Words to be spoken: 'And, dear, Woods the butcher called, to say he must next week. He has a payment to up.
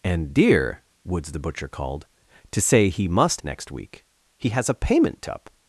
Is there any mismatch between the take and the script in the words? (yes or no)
no